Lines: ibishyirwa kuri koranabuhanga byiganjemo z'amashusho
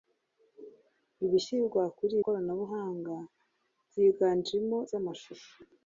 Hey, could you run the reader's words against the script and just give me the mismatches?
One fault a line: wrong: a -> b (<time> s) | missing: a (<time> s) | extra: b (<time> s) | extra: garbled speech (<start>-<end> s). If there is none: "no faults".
no faults